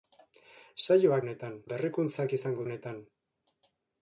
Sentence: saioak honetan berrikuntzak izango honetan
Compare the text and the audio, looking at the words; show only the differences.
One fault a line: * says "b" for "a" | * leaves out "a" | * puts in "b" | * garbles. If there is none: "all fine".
all fine